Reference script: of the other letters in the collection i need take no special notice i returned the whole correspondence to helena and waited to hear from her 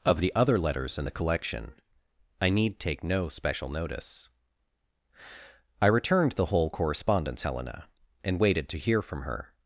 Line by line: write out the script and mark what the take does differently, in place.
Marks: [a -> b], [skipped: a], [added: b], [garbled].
of the other letters in the collection i need take no special notice i returned the whole correspondence [skipped: to] helena and waited to hear from her